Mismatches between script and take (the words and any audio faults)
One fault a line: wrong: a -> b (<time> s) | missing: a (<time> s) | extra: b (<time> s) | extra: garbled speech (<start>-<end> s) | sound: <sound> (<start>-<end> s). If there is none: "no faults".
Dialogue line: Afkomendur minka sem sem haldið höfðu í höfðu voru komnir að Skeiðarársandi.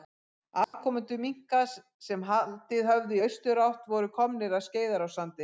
sound: dropout (0.6-0.7 s)
missing: sem (2.2 s)
wrong: höfðu -> austurátt (3.2 s)